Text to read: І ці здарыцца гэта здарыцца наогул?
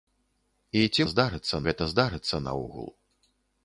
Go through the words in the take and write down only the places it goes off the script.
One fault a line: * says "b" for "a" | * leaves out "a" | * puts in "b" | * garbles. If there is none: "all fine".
all fine